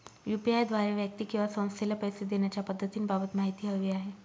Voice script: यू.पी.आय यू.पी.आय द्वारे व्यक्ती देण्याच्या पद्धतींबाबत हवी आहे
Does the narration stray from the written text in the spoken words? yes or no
yes